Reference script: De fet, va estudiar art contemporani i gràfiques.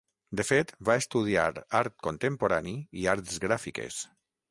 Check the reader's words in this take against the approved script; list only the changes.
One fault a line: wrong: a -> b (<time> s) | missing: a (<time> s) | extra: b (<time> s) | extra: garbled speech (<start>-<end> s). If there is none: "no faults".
extra: arts (3.1 s)